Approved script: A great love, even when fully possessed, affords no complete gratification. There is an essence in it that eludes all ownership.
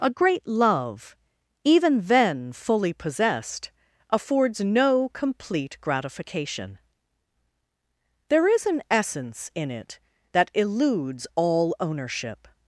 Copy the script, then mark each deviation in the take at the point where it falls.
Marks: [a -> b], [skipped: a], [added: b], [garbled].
A great love, even [when -> then] fully possessed, affords no complete gratification. There is an essence in it that eludes all ownership.